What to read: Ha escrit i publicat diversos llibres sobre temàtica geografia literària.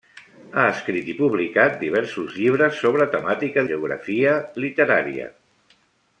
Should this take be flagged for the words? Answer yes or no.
no